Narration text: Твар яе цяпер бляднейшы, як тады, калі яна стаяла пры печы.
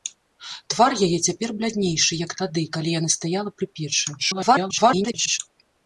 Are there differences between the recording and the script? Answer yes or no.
yes